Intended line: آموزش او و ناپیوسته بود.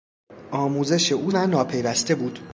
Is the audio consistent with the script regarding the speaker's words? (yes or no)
yes